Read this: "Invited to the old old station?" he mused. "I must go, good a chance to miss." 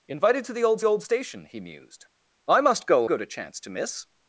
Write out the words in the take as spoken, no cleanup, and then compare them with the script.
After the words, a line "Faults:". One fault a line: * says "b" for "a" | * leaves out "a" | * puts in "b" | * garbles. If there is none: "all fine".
"Invited to the old old station?" he mused. "I must go, good a chance to miss."
Faults:
all fine